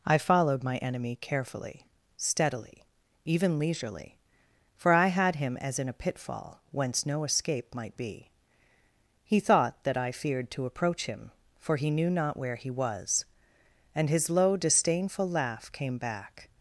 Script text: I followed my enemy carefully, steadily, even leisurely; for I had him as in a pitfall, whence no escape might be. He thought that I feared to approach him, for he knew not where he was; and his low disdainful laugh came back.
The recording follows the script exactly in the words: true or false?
true